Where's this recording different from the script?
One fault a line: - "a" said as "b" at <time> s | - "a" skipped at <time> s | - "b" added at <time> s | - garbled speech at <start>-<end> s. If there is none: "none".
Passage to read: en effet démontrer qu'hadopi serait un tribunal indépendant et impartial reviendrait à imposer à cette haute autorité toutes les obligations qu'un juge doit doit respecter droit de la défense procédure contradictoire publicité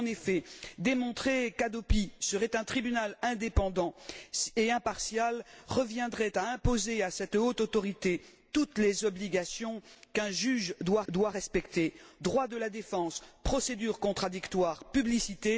none